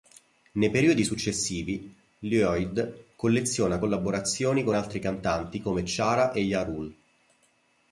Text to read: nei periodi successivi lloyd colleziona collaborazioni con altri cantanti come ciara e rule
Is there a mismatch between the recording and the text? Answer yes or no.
yes